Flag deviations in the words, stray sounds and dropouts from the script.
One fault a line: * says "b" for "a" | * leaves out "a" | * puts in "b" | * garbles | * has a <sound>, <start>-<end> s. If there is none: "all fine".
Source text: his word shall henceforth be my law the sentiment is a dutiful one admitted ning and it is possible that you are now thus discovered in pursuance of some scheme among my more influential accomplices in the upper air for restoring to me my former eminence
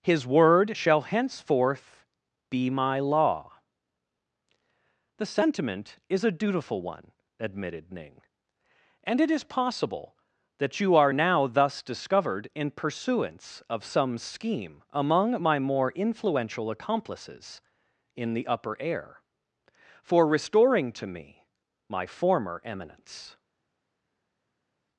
all fine